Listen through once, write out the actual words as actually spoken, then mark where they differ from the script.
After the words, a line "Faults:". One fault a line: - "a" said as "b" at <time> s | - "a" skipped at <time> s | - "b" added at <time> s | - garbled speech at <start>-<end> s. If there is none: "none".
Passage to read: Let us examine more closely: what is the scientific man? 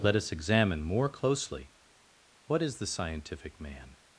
Let us examine more closely: what is the scientific man?
Faults:
none